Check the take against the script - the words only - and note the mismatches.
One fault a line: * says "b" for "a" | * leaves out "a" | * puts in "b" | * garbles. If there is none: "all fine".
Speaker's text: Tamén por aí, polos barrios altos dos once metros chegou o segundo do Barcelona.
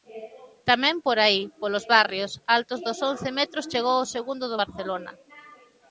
all fine